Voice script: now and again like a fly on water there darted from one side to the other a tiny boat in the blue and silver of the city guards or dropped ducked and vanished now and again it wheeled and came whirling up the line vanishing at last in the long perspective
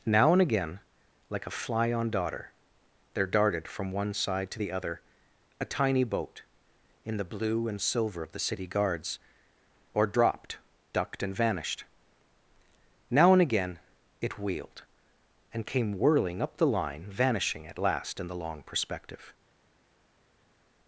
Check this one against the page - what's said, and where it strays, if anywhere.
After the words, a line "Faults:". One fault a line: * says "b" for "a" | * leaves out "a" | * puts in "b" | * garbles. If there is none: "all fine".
now and again like a fly on daughter there darted from one side to the other a tiny boat in the blue and silver of the city guards or dropped ducked and vanished now and again it wheeled and came whirling up the line vanishing at last in the long perspective
Faults:
* says "daughter" for "water"